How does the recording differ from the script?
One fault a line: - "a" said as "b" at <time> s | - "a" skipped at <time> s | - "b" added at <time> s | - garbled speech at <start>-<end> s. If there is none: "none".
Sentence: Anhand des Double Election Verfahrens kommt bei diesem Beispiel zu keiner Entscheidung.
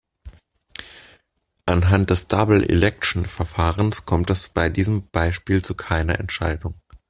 - "es" added at 4.3 s